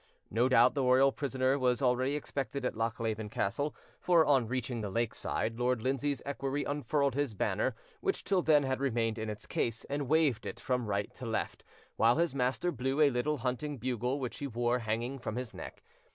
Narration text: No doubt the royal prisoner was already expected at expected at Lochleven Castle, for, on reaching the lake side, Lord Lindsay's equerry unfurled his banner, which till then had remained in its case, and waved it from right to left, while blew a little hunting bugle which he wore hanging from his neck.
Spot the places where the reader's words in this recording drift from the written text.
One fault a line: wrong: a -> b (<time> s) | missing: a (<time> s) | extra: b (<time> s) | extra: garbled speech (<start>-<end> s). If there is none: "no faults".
missing: expected at (2.7 s)
extra: his master (12.1 s)